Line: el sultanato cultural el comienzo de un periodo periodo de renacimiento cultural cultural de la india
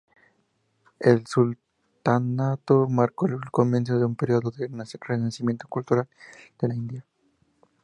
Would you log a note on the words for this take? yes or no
yes